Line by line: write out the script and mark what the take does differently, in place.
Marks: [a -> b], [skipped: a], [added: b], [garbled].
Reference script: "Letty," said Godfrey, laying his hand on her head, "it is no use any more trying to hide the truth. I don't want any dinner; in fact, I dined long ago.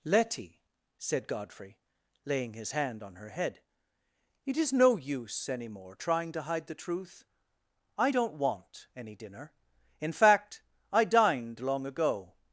"Letty," said Godfrey, laying his hand on her head, "it is no use any more trying to hide the truth. I don't want any dinner; in fact, I dined long ago.